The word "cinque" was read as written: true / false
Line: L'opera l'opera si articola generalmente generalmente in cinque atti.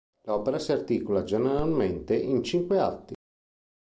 true